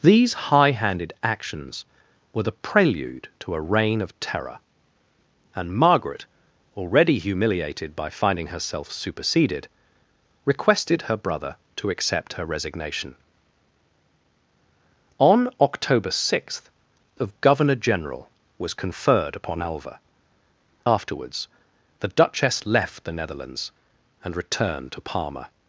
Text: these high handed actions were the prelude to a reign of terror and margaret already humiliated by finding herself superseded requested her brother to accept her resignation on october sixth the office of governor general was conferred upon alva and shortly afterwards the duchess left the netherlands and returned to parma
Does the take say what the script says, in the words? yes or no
no